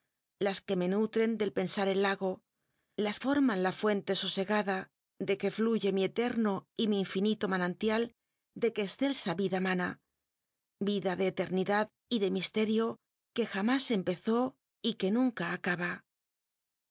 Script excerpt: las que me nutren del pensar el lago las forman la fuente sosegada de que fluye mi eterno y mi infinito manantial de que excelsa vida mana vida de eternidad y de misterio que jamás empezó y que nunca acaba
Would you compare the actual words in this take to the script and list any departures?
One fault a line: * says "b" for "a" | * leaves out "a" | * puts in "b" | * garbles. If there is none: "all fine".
all fine